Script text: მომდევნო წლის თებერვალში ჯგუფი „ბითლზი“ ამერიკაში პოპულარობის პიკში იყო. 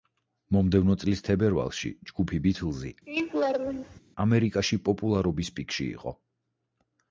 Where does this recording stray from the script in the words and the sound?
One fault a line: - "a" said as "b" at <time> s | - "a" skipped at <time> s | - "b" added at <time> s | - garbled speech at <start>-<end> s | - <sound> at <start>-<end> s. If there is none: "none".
- laugh at 3.1-4.0 s